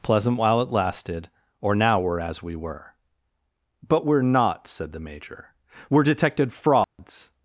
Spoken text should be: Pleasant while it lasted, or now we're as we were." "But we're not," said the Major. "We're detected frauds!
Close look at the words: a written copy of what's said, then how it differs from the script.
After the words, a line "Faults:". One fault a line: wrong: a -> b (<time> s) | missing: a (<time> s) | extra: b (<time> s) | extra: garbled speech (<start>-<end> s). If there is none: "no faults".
Pleasant while it lasted, or now we're as we were." "But we're not," said the Major. "We're detected frauds!
Faults:
no faults